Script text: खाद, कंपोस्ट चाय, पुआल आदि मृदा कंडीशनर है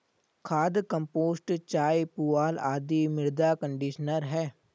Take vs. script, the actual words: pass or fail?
pass